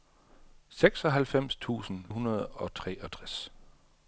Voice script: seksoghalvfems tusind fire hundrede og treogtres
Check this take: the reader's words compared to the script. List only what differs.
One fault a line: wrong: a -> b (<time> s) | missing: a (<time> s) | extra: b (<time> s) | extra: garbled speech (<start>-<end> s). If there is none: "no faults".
missing: fire (2.0 s)